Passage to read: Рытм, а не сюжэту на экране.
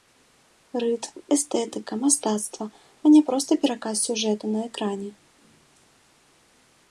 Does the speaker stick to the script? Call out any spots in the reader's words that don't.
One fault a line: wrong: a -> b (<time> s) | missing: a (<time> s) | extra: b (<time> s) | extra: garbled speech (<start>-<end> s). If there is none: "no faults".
extra: эстэтыка мастацтва (1.4 s)
extra: проста пераказ (3.3 s)